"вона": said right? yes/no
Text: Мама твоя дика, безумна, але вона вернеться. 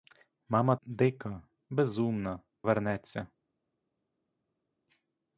no